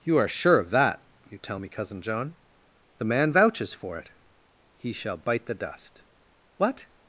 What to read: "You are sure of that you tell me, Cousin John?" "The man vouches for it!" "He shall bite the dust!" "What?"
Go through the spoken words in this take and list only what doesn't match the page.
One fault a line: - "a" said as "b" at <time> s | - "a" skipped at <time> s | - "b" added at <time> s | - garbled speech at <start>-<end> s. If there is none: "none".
none